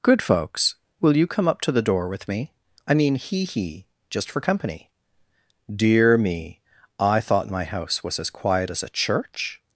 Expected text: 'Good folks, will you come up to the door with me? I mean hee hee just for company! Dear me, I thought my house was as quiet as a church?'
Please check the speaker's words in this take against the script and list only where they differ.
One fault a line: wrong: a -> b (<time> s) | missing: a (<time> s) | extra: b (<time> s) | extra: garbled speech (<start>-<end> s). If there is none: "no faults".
no faults